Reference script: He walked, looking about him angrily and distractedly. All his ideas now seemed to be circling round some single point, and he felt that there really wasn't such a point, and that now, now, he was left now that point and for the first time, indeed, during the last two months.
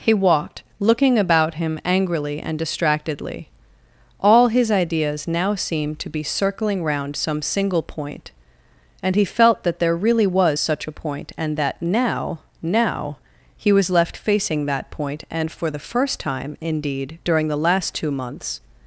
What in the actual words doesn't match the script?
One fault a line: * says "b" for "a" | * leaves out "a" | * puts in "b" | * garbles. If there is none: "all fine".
* says "was" for "wasn't"
* says "facing" for "now"